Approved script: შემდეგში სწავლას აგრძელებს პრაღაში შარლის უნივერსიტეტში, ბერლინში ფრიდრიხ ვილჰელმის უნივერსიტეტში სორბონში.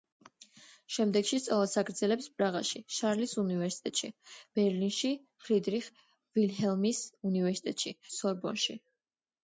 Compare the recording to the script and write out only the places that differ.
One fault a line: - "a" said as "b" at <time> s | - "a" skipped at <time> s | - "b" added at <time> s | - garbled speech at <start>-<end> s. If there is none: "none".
none